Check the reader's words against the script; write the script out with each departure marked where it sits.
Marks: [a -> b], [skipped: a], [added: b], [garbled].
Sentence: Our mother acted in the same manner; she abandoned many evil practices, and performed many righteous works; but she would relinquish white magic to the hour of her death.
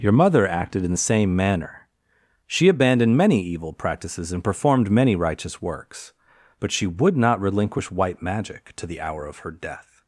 [Our -> Your] mother acted in the same manner; she abandoned many evil practices, and performed many righteous works; but she would [added: not] relinquish white magic to the hour of her death.